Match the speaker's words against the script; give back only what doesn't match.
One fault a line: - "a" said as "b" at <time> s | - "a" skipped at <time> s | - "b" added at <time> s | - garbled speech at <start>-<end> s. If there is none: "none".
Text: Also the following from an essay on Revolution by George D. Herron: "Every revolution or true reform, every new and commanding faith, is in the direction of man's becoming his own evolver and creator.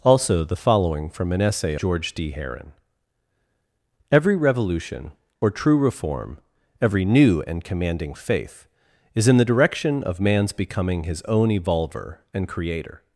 - "on Revolution by" skipped at 1.8 s